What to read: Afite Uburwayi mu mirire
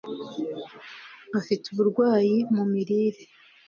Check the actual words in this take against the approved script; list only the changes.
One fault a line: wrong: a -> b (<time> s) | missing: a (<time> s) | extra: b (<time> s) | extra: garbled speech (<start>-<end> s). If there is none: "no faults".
no faults